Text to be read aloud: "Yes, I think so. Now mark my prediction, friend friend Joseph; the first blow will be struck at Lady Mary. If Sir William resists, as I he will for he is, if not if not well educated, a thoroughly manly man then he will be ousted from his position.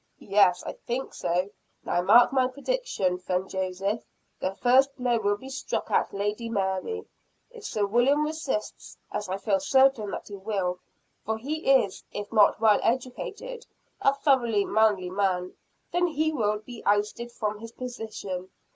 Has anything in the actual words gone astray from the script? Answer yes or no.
yes